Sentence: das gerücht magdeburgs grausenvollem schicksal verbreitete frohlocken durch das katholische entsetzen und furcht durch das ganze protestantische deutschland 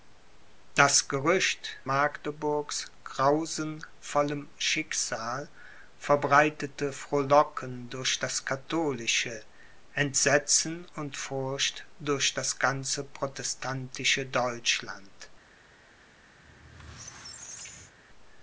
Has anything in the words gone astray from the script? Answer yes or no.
no